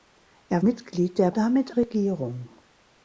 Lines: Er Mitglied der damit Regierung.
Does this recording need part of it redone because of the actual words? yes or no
no